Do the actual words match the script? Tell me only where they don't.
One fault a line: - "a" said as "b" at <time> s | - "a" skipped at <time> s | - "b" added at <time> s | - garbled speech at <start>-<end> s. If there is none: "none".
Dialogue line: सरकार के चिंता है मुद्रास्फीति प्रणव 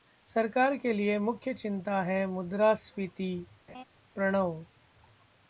- "लिए मुख्य" added at 0.9 s